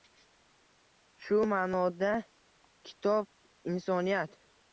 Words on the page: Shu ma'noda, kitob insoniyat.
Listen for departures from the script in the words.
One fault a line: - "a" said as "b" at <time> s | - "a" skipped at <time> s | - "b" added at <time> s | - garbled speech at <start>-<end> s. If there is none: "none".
none